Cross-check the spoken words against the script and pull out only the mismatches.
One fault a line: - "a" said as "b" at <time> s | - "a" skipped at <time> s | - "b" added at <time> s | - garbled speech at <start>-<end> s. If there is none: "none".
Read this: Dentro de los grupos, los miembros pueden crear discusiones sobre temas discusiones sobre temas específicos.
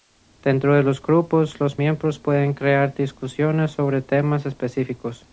- "discusiones sobre temas" skipped at 4.4 s